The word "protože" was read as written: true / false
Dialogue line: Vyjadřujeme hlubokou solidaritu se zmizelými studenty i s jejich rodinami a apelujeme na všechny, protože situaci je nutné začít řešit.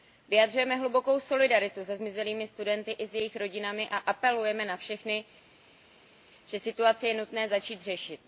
false